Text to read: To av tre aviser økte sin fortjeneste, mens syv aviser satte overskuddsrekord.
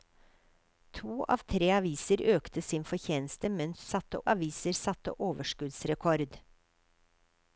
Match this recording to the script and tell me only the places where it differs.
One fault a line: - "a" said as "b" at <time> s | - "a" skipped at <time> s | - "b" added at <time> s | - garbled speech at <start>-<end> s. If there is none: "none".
- "syv" said as "satte" at 3.9 s